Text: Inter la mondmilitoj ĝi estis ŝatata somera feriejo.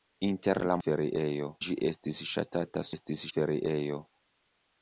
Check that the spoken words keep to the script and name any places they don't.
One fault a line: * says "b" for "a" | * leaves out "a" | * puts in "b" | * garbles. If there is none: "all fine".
* says "feriejo" for "mondmilitoj"
* says "estis" for "somera"